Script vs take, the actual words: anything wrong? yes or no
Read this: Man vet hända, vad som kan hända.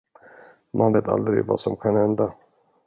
yes